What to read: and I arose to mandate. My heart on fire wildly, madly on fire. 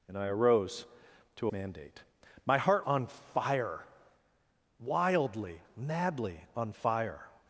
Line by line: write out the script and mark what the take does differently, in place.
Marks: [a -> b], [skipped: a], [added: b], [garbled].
and I arose to mandate. My heart on fire wildly, madly on fire.